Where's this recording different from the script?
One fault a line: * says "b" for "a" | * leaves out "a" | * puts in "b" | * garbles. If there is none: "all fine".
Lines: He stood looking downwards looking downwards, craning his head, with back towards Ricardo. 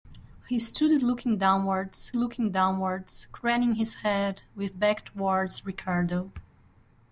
all fine